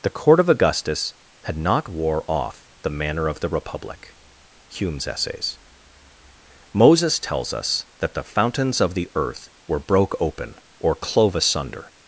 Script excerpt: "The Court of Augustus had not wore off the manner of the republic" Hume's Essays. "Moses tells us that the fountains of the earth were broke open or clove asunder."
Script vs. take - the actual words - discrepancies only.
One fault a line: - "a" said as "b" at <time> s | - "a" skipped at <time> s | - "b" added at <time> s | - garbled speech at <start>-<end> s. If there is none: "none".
none